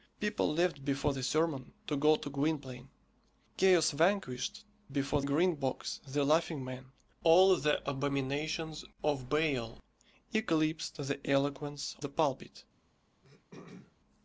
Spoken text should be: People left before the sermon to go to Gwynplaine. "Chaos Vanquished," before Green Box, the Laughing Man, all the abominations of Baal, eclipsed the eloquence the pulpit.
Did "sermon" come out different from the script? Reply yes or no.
no